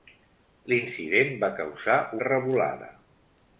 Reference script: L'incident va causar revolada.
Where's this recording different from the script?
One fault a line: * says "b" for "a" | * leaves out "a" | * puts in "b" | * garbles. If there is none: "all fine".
all fine